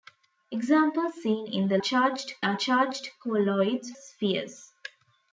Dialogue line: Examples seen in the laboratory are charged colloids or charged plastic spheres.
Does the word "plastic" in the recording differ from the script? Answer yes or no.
yes